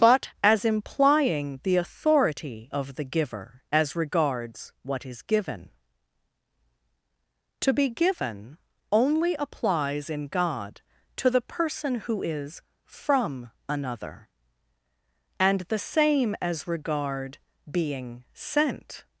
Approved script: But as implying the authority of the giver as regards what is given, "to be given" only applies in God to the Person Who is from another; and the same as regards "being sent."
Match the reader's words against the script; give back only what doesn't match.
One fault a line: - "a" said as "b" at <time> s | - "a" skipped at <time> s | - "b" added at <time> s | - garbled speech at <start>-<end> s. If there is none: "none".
- "regards" said as "regard" at 16.6 s